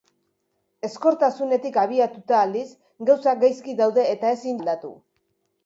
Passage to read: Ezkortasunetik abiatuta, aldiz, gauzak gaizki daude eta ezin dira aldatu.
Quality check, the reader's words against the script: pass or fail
fail